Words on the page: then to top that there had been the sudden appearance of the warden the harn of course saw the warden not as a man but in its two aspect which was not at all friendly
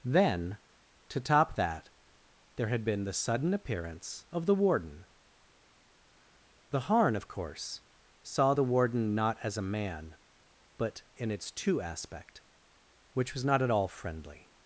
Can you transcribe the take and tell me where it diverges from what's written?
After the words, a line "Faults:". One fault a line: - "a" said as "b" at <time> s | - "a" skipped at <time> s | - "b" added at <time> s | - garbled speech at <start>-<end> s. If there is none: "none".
then to top that there had been the sudden appearance of the warden the harn of course saw the warden not as a man but in its two aspect which was not at all friendly
Faults:
none